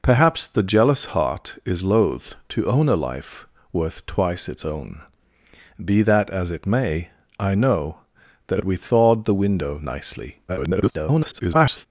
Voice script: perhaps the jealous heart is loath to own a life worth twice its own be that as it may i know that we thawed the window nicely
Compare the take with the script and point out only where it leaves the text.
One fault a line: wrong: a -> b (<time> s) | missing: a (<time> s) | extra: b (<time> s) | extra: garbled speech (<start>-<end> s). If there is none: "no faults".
extra: garbled speech (10.5-11.9 s)